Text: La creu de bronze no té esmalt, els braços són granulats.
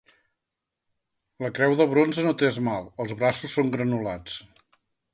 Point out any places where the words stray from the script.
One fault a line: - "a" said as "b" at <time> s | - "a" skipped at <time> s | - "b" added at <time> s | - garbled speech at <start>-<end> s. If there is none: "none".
none